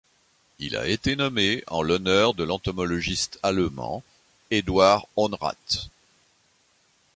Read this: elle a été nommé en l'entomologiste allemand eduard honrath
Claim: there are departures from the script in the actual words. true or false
true